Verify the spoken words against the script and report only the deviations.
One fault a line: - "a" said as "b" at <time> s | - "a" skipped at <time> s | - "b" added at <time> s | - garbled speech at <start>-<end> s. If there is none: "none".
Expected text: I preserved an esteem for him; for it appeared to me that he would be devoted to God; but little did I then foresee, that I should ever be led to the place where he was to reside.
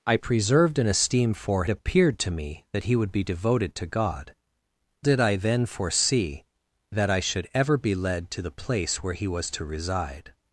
- "him for it" skipped at 1.6 s
- "but little" skipped at 4.3 s